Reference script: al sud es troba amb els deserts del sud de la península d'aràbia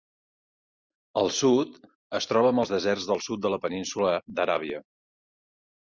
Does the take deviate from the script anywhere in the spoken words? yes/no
no